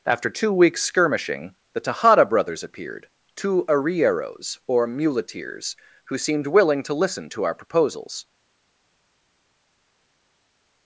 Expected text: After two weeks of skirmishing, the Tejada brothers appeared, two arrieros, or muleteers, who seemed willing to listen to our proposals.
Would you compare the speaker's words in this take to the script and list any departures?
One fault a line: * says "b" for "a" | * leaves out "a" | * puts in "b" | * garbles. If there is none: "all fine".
* leaves out "of"